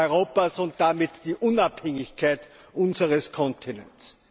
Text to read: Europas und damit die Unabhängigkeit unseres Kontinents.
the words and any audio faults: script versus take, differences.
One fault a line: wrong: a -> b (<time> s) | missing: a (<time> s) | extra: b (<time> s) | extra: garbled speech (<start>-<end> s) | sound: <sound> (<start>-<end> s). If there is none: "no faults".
no faults